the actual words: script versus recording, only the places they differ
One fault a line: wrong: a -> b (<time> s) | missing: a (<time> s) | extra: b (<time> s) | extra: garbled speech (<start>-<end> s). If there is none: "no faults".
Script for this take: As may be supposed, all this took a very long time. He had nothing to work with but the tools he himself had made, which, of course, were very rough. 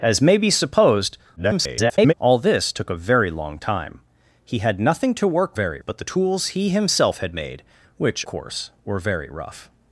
extra: garbled speech (1.4-2.1 s)
wrong: with -> very (5.5 s)
missing: of (8.3 s)